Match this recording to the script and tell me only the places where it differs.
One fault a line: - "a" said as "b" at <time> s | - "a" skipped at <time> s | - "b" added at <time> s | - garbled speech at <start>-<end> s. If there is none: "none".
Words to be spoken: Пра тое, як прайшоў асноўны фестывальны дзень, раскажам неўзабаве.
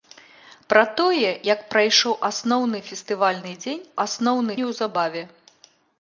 - "раскажам" said as "асноўны" at 4.0 s